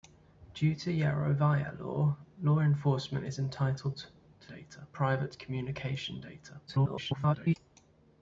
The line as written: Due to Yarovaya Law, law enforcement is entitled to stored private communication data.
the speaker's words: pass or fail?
fail